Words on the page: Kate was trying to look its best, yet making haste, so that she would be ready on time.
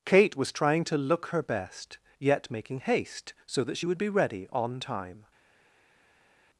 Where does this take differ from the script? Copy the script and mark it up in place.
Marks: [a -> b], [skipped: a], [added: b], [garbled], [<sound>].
Kate was trying to look [its -> her] best, yet making haste, so that she would be ready on time.